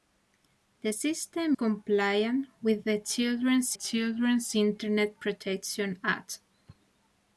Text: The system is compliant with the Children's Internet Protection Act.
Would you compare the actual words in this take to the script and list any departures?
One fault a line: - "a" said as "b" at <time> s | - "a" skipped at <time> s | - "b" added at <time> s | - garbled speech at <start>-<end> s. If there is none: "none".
- "is" skipped at 1.6 s
- "Children's" added at 3.7 s